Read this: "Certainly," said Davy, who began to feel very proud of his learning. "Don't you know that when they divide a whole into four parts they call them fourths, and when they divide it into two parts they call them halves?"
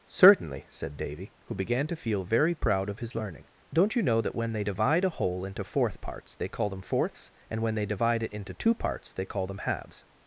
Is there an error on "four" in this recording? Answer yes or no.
yes